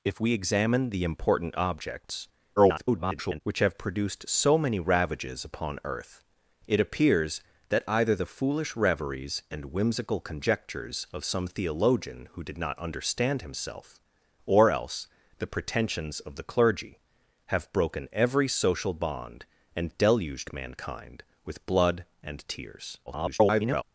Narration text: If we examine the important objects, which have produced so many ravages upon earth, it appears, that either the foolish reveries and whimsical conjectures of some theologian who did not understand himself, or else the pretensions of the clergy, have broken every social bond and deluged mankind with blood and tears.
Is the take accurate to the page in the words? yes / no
no